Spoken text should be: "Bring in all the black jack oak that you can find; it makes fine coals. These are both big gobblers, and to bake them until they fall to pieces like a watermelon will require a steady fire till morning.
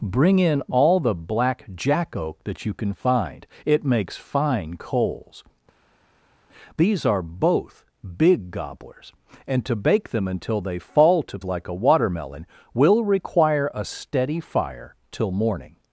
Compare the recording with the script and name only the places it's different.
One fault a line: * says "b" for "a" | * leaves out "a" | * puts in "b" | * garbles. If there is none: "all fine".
* leaves out "pieces"